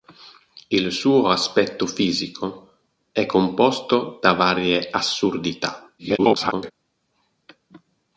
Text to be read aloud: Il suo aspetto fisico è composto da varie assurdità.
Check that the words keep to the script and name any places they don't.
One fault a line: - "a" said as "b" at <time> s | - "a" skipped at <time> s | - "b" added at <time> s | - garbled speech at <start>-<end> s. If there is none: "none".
- garbled speech at 6.0-6.7 s